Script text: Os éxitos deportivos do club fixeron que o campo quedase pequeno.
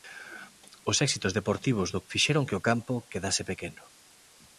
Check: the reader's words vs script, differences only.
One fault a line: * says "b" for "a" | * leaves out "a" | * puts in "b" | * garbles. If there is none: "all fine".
* leaves out "club"